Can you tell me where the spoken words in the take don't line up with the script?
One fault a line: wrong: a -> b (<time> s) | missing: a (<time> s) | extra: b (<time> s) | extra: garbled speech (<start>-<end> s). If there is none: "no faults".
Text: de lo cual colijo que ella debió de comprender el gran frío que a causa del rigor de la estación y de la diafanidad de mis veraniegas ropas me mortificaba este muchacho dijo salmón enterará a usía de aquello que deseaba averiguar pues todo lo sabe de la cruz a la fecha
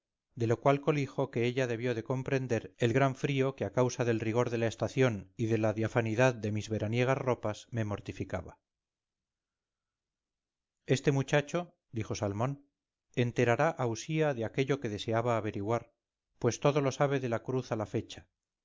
no faults